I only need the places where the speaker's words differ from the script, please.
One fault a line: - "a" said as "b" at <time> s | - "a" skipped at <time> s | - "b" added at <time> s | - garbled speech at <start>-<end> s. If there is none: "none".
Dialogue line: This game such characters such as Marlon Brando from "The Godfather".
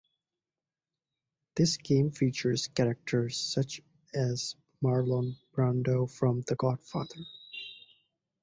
- "such" said as "features" at 2.1 s